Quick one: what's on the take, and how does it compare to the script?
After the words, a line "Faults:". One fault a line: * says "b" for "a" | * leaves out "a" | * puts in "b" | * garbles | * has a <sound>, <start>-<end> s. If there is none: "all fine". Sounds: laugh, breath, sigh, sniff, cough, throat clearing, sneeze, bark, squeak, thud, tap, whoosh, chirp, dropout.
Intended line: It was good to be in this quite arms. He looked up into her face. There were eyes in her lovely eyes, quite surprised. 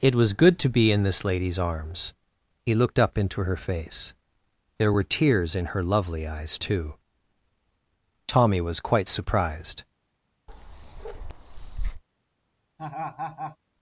It was good to be in this lady's arms. He looked up into her face. There were tears in her lovely eyes, too. Tommy was quite surprised.
Faults:
* says "lady's" for "quite"
* says "tears" for "eyes"
* puts in "too Tommy was"
* has a bark, 10.5-12.0 s
* has a laugh, 12.8-13.6 s